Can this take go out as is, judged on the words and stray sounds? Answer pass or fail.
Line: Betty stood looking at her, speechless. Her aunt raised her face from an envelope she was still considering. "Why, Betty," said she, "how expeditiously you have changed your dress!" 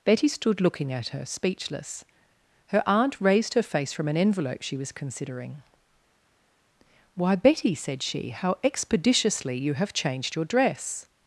fail